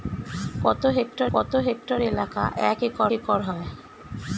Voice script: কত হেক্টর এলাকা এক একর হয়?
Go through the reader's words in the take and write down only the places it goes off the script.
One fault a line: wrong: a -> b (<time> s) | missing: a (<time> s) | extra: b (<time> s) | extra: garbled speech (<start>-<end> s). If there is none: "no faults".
extra: কত হেক্টর (1.3 s)
extra: একর (3.1 s)